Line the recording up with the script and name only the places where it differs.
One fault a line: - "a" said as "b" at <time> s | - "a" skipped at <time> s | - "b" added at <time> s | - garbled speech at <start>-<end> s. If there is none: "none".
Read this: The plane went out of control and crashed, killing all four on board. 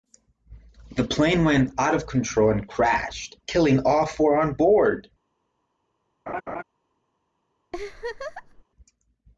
none